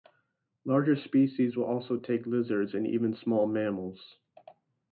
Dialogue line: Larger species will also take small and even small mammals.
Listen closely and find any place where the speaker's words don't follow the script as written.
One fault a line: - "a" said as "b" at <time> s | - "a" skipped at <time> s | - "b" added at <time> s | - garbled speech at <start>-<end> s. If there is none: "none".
- "small" said as "lizards" at 2.2 s